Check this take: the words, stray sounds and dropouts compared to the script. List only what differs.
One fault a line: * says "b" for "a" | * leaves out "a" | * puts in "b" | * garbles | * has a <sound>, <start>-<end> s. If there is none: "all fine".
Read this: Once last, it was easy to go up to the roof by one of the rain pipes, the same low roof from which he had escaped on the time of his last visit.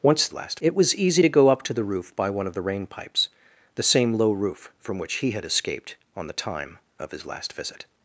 all fine